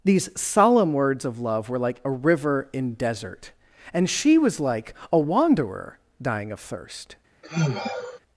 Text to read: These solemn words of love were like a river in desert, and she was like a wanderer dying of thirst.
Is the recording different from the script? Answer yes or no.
no